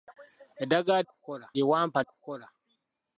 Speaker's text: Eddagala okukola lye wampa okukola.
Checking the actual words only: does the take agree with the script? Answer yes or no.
yes